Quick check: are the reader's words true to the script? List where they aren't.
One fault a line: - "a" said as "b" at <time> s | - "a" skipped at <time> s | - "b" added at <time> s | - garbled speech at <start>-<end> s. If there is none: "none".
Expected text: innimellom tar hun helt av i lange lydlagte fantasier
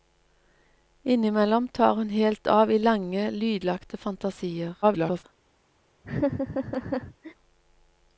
- garbled speech at 4.8-5.2 s